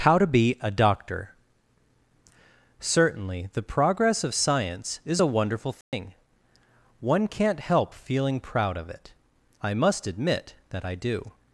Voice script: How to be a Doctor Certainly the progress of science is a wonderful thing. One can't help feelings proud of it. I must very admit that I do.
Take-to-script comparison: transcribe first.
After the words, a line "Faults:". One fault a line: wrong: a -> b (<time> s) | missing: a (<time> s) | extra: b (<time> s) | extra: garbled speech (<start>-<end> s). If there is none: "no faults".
How to be a Doctor Certainly the progress of science is a wonderful thing. One can't help feeling proud of it. I must admit that I do.
Faults:
wrong: feelings -> feeling (7.9 s)
missing: very (10.0 s)